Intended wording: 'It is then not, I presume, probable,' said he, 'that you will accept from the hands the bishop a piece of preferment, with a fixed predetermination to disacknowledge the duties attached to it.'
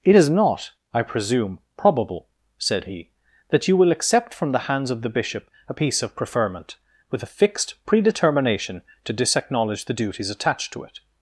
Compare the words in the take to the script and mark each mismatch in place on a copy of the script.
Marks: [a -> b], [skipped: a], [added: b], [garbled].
'It is [skipped: then] not, I presume, probable,' said he, 'that you will accept from the hands [added: of] the bishop a piece of preferment, with a fixed predetermination to disacknowledge the duties attached to it.'